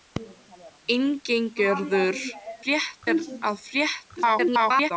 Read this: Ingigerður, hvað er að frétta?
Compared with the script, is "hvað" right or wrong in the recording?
wrong